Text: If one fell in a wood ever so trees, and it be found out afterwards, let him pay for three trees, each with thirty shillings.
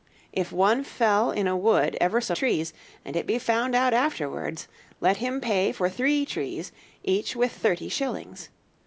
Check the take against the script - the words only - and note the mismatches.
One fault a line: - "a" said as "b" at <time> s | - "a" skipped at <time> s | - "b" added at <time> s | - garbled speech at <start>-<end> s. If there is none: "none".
none